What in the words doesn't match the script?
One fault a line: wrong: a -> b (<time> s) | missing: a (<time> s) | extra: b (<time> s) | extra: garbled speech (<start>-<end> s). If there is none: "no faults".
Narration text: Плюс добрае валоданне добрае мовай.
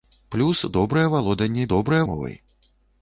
no faults